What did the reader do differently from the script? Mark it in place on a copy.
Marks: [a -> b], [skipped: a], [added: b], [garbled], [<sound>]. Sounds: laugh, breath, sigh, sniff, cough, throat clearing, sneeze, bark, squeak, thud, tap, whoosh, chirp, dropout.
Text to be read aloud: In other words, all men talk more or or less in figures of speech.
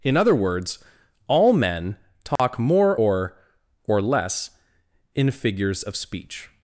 In other words, all men talk [dropout] more or or less in figures of speech.